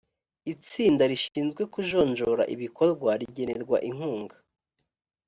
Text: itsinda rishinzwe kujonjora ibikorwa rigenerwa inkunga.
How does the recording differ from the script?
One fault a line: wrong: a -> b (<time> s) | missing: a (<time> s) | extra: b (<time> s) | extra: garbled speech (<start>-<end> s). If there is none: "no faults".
no faults